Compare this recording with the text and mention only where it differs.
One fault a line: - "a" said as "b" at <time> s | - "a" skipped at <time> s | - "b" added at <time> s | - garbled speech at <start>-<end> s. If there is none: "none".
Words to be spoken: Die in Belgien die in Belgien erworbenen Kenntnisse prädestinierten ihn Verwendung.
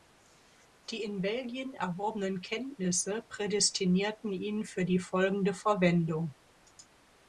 - "die in Belgien" skipped at 1.8 s
- "für die folgende" added at 4.7 s